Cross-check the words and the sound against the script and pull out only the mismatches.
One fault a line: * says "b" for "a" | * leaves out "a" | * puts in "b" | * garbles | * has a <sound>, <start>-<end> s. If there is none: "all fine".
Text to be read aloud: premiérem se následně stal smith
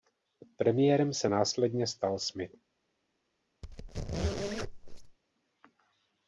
* has a squeak, 3.6-5.2 s